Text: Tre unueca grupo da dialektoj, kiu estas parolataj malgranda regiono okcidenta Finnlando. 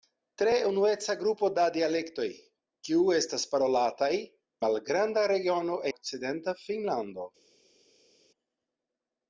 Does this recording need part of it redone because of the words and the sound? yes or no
no